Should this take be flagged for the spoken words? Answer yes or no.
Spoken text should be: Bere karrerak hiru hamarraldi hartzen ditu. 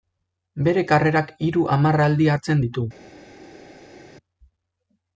no